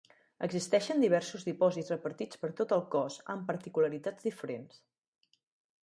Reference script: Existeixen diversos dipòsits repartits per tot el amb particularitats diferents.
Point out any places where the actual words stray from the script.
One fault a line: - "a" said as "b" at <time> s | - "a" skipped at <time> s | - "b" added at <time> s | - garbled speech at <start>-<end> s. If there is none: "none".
- "cos" added at 3.0 s